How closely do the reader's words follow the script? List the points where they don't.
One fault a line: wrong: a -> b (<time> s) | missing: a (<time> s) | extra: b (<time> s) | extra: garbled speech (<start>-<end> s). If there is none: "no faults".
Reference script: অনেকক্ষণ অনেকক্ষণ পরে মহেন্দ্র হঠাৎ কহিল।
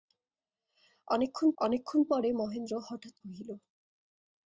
no faults